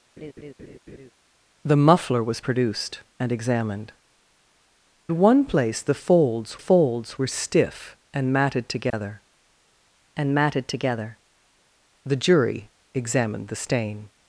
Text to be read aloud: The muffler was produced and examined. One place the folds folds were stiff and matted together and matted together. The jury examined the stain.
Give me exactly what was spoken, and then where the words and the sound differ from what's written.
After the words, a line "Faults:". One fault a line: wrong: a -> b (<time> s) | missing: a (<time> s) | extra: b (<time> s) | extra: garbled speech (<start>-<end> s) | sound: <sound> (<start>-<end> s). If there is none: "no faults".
The muffler was produced and examined. One place the folds folds were stiff and matted together and matted together. The jury examined the stain.
Faults:
sound: laugh (0.2-1.1 s)
sound: dropout (8.9-8.9 s)